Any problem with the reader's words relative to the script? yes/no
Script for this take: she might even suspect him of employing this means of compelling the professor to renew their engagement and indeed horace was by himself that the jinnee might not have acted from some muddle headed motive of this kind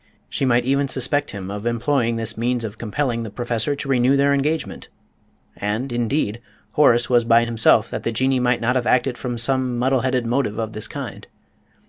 no